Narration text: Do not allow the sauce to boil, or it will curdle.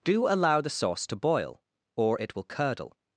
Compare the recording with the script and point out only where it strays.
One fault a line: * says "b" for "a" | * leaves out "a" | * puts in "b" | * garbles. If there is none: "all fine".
* leaves out "not"